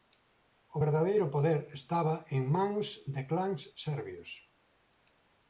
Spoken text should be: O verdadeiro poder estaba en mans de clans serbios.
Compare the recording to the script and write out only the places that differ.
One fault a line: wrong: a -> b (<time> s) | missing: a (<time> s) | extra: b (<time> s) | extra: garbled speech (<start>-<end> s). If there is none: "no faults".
no faults